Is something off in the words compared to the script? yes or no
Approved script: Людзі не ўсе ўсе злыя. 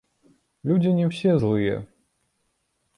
yes